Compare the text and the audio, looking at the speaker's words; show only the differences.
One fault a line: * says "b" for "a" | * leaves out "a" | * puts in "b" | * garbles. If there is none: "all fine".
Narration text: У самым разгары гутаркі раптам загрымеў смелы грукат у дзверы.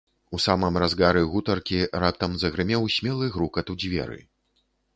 all fine